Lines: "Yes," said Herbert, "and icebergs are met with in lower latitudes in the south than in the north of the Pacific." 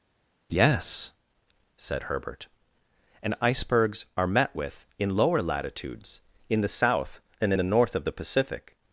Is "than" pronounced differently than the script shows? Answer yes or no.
yes